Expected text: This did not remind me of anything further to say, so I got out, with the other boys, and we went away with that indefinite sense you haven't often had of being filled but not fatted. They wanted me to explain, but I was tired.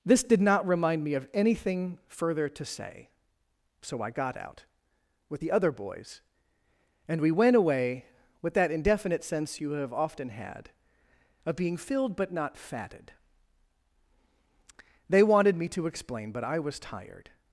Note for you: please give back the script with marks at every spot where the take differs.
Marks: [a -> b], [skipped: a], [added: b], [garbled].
This did not remind me of anything further to say, so I got out, with the other boys, and we went away with that indefinite sense you [haven't -> have] often had of being filled but not fatted. They wanted me to explain, but I was tired.